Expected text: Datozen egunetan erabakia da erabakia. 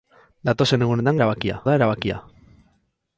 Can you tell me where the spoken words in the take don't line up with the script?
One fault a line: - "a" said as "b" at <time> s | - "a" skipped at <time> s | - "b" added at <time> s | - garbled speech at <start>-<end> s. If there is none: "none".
none